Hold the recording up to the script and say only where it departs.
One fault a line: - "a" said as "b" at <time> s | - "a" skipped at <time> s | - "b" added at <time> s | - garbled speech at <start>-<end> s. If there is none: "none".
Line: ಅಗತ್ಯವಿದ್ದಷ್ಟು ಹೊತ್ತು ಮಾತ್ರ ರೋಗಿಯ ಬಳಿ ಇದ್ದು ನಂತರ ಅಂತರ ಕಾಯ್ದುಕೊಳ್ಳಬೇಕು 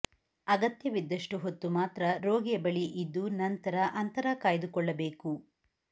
none